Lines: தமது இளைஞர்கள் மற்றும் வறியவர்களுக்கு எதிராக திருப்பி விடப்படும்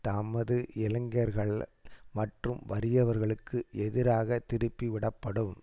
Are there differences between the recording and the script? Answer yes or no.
no